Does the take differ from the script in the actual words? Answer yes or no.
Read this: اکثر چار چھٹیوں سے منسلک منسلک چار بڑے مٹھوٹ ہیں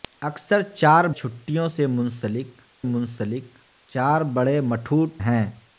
no